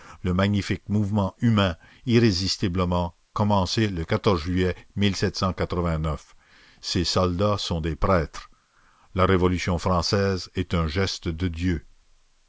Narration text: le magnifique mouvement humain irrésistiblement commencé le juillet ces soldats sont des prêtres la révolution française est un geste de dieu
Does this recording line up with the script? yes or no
yes